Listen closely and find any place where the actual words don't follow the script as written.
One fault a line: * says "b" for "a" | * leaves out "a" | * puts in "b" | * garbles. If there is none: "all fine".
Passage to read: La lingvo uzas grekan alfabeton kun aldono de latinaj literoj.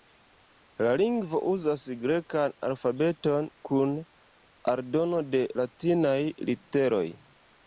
all fine